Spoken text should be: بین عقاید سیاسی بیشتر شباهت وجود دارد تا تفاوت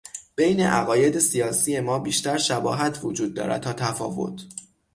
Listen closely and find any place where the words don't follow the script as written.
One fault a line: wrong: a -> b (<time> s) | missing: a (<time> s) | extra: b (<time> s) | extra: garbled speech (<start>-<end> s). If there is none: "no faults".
extra: ما (1.8 s)